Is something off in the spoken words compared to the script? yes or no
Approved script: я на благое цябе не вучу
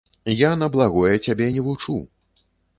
no